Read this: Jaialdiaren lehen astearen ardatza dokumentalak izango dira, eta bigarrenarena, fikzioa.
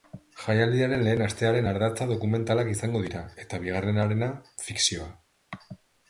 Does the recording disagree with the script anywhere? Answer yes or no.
no